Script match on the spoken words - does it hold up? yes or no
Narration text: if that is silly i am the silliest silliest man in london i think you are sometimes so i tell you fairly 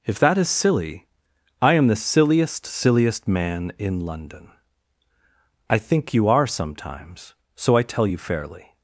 yes